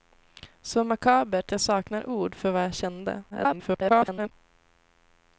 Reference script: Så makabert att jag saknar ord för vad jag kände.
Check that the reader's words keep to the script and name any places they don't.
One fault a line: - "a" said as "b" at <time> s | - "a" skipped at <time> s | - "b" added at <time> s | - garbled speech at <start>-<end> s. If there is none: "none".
- "att" skipped at 1.5 s
- garbled speech at 3.3-4.3 s